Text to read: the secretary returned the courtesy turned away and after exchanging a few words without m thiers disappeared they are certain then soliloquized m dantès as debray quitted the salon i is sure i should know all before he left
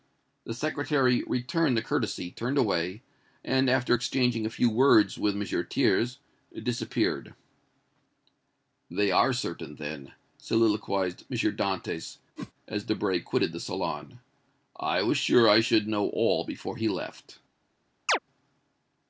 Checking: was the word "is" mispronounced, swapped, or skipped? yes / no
yes